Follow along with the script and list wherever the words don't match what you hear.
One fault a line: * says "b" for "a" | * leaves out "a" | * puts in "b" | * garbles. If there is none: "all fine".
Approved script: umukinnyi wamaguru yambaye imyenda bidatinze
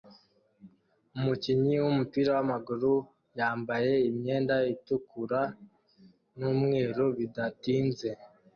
* puts in "wumupira"
* puts in "itukura numweru"